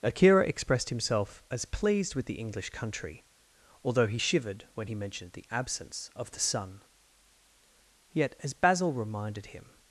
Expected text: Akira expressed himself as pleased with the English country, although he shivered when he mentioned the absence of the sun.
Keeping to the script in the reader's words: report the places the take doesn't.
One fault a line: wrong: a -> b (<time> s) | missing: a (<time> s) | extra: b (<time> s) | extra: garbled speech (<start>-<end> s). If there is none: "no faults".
extra: Yet as Basil reminded him (8.1 s)